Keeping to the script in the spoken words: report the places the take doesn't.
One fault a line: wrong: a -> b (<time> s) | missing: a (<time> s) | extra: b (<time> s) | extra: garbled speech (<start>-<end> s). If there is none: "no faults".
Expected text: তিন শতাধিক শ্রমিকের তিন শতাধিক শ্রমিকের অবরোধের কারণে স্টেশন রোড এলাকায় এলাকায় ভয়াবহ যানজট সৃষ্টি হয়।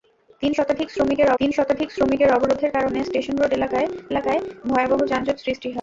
no faults